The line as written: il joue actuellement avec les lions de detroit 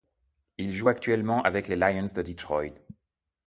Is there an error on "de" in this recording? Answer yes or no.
no